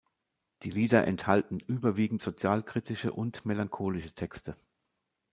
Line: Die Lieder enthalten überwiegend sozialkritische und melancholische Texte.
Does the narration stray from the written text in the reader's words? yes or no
no